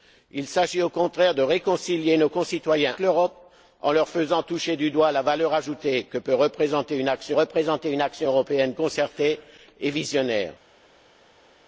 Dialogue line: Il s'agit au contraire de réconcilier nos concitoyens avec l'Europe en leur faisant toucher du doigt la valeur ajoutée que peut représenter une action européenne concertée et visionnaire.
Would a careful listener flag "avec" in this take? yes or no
yes